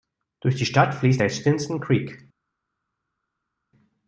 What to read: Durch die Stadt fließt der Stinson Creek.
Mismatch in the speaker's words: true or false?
false